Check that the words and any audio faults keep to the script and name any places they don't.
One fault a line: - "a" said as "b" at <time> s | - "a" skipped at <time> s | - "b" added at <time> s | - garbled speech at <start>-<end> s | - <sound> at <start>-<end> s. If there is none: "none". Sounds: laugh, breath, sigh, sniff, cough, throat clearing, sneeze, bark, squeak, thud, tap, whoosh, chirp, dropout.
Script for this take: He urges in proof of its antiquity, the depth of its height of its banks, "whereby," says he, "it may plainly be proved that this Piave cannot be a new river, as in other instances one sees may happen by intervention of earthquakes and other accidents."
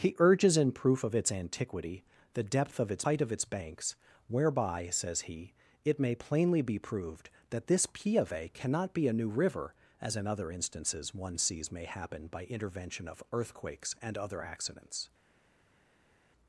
none